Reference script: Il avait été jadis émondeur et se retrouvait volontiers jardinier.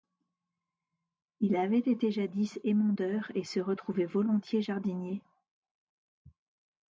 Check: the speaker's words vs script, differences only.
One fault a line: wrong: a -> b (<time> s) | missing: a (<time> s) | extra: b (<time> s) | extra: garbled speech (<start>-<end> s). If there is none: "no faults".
no faults